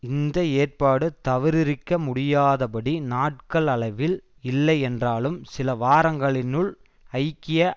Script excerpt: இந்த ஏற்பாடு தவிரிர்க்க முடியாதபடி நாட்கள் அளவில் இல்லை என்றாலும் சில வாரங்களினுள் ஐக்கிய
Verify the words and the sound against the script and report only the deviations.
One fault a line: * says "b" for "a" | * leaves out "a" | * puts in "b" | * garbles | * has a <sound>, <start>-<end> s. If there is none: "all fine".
all fine